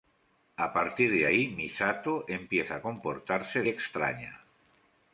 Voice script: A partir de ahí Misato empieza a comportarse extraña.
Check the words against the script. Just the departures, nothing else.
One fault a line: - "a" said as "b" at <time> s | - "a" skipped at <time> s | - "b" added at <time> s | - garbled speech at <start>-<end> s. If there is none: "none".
none